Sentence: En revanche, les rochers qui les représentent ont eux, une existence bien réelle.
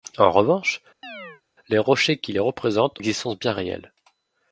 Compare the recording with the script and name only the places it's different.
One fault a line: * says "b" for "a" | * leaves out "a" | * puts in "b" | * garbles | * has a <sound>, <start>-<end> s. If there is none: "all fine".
* has a chirp, 1.0-1.4 s
* leaves out "ont eux une"